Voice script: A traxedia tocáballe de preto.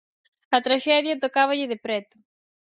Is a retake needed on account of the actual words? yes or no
no